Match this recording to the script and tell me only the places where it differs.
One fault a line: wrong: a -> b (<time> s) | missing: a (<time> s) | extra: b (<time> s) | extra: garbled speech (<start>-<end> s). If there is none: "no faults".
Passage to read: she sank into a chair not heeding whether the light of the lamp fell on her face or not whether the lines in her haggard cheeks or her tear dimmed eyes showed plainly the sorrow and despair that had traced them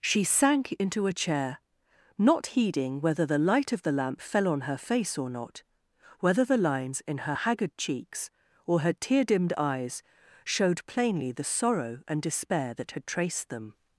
no faults